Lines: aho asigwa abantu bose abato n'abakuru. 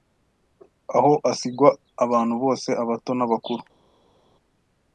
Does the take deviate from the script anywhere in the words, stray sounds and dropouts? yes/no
no